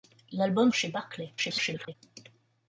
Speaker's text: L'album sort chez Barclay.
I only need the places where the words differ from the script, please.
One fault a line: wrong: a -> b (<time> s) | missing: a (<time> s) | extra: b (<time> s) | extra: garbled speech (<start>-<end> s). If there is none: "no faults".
missing: sort (0.7 s)
extra: garbled speech (1.4-1.9 s)